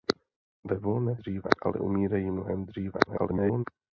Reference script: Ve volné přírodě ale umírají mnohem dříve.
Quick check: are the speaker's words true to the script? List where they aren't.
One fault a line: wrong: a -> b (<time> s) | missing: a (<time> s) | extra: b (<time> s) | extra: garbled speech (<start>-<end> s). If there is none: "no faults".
wrong: přírodě -> dříve (1.2 s)
extra: garbled speech (3.1-3.6 s)